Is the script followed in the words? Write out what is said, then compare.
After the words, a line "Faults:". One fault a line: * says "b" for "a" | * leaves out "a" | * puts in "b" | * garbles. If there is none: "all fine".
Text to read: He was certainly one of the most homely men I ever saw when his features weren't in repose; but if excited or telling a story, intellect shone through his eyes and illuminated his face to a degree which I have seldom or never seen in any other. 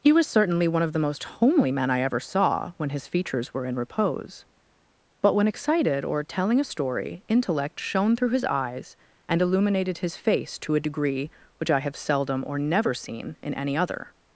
He was certainly one of the most homely men I ever saw when his features were in repose; but when excited or telling a story, intellect shone through his eyes and illuminated his face to a degree which I have seldom or never seen in any other.
Faults:
* says "were" for "weren't"
* says "when" for "if"